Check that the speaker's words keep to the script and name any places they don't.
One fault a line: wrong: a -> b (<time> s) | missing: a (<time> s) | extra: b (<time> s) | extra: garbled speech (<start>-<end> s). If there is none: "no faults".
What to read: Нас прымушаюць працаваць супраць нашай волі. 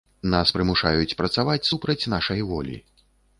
no faults